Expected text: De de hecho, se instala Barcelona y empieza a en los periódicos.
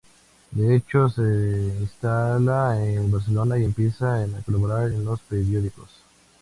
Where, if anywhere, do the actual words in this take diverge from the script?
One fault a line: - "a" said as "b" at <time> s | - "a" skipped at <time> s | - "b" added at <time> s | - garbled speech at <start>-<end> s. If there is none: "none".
- "de" skipped at 0.8 s
- "en" added at 2.8 s
- "colaborar" added at 4.5 s